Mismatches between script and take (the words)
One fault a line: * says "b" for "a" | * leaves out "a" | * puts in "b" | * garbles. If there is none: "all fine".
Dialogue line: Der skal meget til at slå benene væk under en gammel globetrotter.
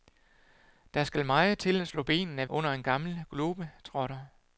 * leaves out "væk"